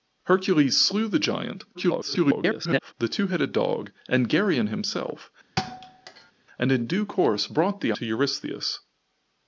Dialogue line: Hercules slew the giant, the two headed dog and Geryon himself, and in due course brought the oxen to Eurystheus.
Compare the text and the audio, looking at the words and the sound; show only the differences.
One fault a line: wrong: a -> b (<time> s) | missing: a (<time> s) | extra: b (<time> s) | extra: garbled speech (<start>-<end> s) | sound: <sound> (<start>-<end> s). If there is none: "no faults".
extra: garbled speech (1.7-2.9 s)
sound: thud (5.6-6.3 s)
missing: oxen (7.9 s)